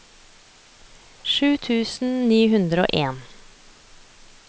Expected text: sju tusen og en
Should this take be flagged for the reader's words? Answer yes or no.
yes